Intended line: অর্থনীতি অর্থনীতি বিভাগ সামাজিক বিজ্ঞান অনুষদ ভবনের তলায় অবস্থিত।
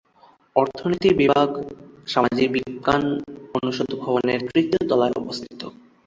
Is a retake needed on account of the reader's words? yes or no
yes